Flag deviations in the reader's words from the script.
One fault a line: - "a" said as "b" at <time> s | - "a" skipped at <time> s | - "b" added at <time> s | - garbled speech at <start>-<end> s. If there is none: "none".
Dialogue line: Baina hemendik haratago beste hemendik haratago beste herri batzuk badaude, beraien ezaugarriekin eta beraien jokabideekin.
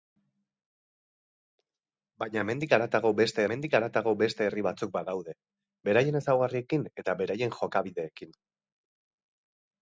none